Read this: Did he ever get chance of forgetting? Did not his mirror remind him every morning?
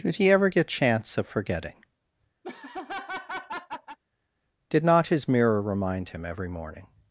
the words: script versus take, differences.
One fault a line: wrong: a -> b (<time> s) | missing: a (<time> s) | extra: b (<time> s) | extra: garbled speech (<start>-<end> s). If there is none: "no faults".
no faults